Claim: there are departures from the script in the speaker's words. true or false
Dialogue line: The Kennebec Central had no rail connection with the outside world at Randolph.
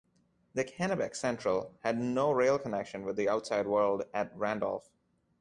false